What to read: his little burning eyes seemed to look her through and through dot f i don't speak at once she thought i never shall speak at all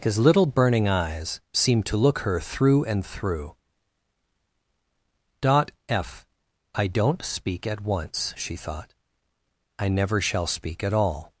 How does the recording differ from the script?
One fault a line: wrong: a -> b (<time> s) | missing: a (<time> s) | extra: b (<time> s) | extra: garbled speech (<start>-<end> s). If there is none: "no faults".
no faults